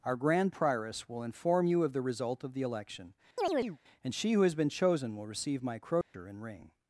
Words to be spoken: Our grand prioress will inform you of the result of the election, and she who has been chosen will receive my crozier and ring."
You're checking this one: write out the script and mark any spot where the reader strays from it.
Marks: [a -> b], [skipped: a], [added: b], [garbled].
Our grand prioress will inform you of the result of the election, and she who has been chosen will receive my crozier and ring."